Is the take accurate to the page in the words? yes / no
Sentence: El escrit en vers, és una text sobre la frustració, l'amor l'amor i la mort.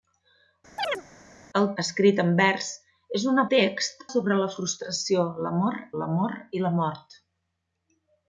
yes